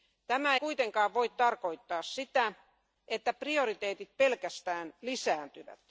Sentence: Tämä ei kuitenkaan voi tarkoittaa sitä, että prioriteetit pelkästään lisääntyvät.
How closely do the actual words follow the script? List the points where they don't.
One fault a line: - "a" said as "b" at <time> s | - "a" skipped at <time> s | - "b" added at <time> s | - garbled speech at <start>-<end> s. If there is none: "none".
- "ei" skipped at 0.6 s